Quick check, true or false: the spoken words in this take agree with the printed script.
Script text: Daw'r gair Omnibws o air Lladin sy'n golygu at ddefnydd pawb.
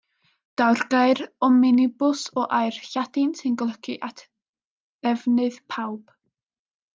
true